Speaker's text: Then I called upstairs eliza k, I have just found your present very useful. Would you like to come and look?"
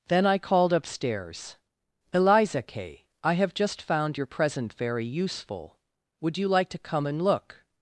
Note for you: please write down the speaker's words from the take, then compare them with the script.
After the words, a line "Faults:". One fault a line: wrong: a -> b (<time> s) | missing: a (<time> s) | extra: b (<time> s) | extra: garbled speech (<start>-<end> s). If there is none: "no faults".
Then I called upstairs eliza k, I have just found your present very useful. Would you like to come and look?"
Faults:
no faults